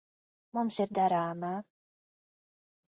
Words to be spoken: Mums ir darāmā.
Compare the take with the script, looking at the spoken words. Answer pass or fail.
pass